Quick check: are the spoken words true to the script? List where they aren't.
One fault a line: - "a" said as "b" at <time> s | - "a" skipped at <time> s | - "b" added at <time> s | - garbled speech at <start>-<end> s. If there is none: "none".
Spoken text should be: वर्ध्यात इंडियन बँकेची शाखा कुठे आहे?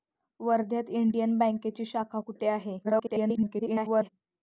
- garbled speech at 2.8-4.1 s